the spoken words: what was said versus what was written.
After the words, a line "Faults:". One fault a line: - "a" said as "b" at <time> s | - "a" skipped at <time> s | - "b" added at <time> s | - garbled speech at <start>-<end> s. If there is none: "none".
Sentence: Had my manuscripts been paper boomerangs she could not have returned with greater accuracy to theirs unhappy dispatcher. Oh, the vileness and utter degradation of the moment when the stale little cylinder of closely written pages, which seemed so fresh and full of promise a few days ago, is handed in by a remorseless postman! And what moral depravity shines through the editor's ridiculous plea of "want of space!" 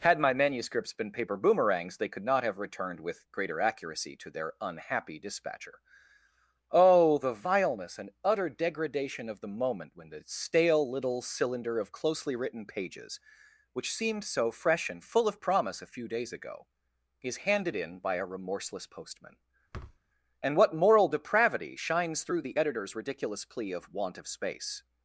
Had my manuscripts been paper boomerangs they could not have returned with greater accuracy to their unhappy dispatcher. Oh, the vileness and utter degradation of the moment when the stale little cylinder of closely written pages, which seemed so fresh and full of promise a few days ago, is handed in by a remorseless postman! And what moral depravity shines through the editor's ridiculous plea of "want of space!"
Faults:
- "she" said as "they" at 2.0 s
- "theirs" said as "their" at 4.3 s